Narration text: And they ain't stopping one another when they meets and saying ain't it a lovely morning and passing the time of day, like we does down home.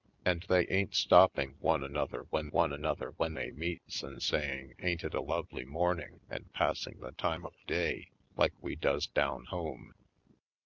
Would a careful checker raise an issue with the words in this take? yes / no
yes